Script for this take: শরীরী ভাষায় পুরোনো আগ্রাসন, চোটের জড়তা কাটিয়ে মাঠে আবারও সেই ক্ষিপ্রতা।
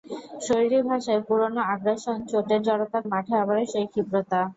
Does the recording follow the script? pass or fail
fail